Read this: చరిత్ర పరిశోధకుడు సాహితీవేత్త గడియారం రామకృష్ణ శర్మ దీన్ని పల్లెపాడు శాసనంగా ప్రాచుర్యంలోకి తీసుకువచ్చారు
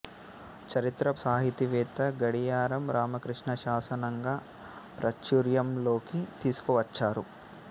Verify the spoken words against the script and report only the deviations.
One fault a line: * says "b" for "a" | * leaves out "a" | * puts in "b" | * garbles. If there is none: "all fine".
* leaves out "పరిశోధకుడు"
* leaves out "శర్మ దీన్ని పల్లెపాడు"